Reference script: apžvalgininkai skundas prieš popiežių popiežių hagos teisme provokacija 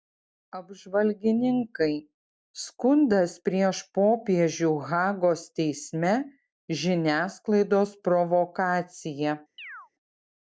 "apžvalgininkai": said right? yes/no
yes